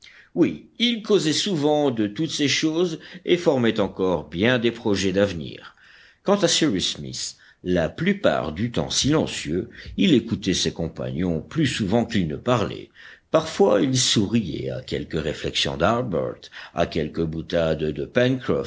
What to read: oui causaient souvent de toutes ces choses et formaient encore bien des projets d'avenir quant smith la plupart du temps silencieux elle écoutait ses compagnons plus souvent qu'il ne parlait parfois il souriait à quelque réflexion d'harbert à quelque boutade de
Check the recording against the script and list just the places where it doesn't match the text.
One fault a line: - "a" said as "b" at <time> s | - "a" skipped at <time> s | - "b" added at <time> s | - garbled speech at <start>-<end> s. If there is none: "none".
- "ils" added at 0.8 s
- "à cyrus" added at 6.4 s
- "elle" said as "il" at 10.0 s